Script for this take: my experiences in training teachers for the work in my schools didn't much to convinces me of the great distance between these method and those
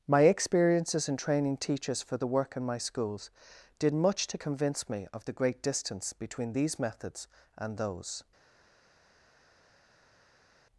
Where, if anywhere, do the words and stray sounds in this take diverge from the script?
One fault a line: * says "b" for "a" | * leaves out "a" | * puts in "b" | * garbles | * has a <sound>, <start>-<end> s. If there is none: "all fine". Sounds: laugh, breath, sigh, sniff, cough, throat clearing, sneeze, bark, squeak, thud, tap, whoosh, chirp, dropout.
* says "did" for "didn't"
* says "convince" for "convinces"
* says "methods" for "method"